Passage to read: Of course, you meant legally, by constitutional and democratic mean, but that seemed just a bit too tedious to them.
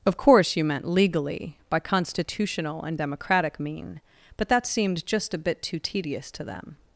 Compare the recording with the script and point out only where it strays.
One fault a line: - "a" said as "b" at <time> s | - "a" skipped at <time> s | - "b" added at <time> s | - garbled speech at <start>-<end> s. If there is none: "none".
none